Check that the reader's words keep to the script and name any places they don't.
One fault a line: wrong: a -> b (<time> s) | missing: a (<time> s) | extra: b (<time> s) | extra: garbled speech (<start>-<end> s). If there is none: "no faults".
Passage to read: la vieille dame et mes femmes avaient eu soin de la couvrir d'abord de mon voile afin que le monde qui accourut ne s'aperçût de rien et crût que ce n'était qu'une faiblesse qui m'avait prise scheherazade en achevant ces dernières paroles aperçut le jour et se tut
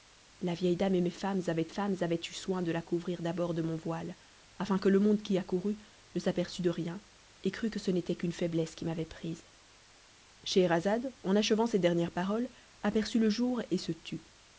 extra: femmes avaient (1.7 s)